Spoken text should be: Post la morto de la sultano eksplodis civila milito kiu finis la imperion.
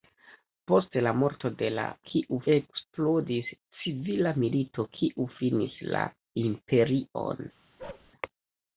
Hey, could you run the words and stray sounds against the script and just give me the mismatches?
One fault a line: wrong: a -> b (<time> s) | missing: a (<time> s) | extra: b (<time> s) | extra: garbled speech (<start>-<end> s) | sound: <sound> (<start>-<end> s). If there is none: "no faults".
wrong: sultano -> kiu (2.1 s)
sound: bark (7.8-8.1 s)